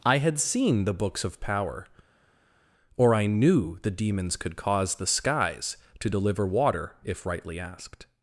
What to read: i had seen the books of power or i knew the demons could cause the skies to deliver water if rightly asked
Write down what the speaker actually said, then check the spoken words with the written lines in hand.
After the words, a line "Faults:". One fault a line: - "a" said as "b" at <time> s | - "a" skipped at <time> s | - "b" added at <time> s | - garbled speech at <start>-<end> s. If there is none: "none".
i had seen the books of power or i knew the demons could cause the skies to deliver water if rightly asked
Faults:
none